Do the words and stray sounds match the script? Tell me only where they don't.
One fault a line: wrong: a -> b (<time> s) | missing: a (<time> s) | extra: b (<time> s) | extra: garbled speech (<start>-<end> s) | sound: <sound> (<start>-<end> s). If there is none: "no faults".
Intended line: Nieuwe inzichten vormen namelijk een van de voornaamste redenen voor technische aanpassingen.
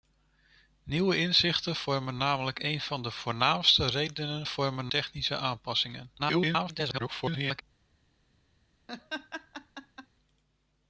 wrong: voor -> vormen (4.5 s)
extra: garbled speech (6.2-7.6 s)
sound: laugh (8.9-10.1 s)